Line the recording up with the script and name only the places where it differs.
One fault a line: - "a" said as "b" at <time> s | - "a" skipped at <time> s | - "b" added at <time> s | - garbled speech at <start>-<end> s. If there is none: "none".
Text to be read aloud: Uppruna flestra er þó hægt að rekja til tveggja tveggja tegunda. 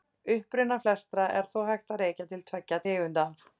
- "tveggja" skipped at 2.8 s